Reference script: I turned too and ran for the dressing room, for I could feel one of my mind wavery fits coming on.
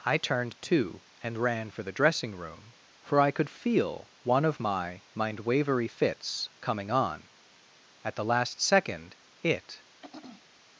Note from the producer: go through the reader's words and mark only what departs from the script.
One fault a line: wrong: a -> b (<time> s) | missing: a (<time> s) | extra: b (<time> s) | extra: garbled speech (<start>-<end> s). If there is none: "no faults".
extra: At the last second it (8.0 s)